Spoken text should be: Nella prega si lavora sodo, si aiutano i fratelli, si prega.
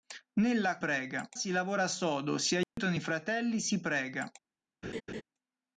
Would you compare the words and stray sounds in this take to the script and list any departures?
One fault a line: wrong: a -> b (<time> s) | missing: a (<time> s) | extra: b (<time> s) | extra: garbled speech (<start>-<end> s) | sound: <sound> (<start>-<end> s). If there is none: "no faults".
sound: dropout (2.6-2.8 s)
sound: laugh (4.8-5.2 s)